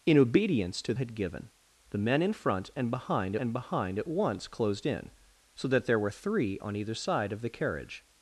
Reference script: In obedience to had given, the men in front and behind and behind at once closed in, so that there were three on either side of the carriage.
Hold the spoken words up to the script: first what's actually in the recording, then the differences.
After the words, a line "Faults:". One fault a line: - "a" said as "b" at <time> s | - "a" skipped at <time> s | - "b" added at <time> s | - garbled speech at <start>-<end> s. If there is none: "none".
In obedience to had given, the men in front and behind and behind at once closed in, so that there were three on either side of the carriage.
Faults:
none